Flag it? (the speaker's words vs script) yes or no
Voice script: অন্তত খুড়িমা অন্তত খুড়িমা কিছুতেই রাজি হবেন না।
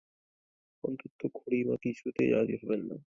yes